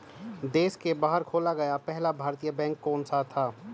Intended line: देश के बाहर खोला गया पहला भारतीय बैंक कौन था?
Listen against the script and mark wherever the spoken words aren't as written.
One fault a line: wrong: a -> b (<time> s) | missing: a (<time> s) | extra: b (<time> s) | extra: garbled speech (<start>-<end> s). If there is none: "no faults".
extra: सा (3.0 s)